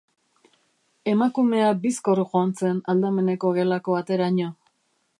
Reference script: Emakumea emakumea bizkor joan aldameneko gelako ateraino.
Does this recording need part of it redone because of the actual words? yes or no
yes